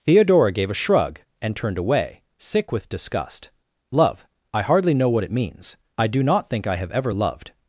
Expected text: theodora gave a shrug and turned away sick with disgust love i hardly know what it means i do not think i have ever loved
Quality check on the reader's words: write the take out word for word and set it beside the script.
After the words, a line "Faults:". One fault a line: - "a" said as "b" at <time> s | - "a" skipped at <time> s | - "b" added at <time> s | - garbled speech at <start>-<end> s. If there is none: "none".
theodora gave a shrug and turned away sick with disgust love i hardly know what it means i do not think i have ever loved
Faults:
none